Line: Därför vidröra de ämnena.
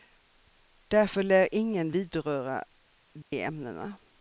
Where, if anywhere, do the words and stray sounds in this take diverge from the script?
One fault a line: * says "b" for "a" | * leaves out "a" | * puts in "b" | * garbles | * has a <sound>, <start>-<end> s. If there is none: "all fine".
* puts in "lär ingen"
* has a dropout, 3.2-3.3 s